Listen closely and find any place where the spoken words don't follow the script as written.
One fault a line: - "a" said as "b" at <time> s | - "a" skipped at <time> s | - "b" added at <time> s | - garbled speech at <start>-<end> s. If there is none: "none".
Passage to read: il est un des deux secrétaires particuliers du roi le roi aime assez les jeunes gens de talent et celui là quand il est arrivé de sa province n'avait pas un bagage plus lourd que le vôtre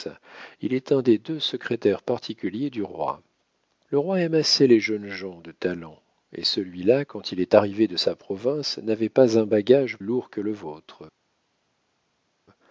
- "plus" skipped at 10.0 s